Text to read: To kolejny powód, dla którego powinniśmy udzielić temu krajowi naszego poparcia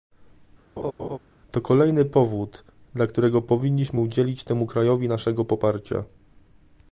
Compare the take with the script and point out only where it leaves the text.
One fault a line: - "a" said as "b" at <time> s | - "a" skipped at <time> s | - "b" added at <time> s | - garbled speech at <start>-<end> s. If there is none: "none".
none